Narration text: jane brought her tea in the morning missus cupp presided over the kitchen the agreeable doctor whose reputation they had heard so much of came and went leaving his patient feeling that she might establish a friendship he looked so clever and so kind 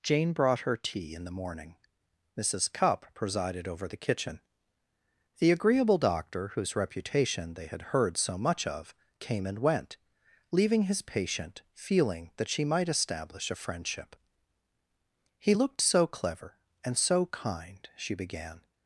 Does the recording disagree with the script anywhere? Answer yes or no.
yes